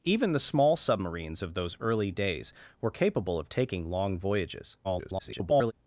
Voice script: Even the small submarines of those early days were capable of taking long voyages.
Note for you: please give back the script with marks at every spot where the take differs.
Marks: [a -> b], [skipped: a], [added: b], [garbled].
Even the small submarines of those early days were capable of taking long voyages. [garbled]